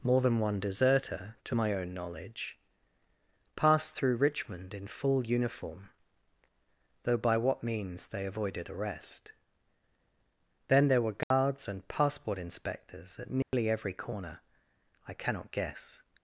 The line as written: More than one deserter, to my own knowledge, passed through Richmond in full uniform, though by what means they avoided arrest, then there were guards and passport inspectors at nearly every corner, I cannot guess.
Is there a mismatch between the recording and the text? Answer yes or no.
no